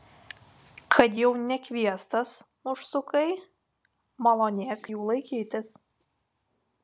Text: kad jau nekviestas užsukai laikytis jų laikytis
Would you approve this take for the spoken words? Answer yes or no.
no